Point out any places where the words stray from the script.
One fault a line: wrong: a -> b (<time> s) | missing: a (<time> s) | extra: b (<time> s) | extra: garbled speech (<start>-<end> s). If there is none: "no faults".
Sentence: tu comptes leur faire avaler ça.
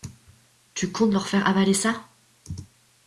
no faults